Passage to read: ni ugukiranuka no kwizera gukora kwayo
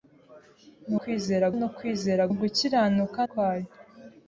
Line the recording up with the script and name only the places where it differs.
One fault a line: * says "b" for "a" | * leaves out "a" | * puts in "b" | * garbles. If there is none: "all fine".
* says "kwizera" for "ugukiranuka"
* says "ugukiranuka" for "gukora"